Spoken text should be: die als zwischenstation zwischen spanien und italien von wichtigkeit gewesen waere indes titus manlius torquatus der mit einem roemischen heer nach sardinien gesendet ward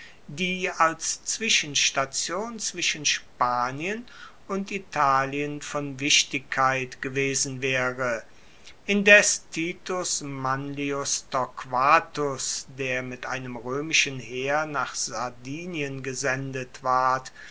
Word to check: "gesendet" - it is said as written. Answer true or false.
true